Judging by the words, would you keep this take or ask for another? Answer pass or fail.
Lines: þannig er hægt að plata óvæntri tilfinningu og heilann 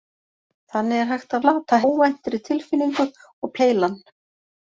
pass